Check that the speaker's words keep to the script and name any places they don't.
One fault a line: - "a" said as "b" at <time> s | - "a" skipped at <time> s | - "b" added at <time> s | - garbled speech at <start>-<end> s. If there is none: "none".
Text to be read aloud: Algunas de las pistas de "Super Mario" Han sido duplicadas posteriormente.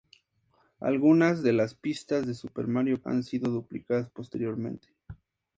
none